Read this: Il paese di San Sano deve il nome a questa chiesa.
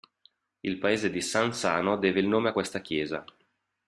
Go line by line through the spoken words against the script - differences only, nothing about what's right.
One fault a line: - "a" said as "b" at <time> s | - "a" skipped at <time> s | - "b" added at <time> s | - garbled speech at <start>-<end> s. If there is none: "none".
none